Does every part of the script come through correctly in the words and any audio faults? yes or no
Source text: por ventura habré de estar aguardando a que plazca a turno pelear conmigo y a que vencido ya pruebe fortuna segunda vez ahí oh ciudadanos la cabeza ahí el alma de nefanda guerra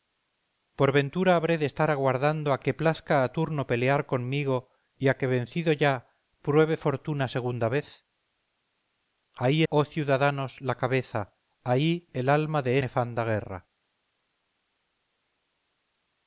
yes